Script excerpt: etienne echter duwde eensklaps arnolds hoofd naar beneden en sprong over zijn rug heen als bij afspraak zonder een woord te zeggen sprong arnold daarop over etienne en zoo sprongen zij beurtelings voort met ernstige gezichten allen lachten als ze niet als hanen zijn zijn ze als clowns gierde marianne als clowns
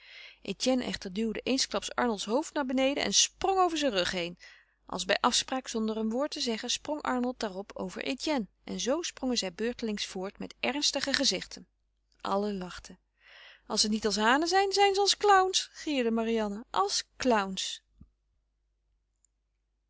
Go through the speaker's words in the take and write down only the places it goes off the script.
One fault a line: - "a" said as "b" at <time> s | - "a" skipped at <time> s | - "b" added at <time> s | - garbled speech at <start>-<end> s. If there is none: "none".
none